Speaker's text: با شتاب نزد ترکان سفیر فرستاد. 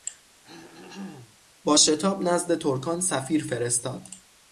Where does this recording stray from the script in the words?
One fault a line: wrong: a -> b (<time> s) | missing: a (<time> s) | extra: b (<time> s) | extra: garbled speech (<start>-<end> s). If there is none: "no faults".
no faults